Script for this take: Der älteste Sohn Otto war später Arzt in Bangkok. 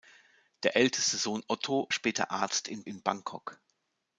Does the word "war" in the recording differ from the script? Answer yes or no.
yes